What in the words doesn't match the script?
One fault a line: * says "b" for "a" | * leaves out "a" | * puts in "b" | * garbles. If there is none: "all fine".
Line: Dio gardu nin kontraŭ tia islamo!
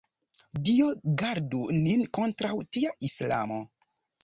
all fine